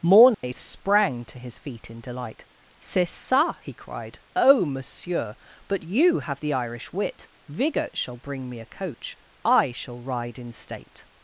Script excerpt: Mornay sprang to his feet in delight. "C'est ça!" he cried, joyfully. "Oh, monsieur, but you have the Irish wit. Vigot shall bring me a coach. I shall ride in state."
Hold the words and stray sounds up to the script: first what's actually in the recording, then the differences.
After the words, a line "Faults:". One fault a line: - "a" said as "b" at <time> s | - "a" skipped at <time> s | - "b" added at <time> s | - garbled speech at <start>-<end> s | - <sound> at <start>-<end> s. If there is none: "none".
Mornay sprang to his feet in delight. "C'est ça!" he cried, "Oh, monsieur, but you have the Irish wit. Vigot shall bring me a coach. I shall ride in state."
Faults:
- dropout at 0.3-0.4 s
- "joyfully" skipped at 4.2 s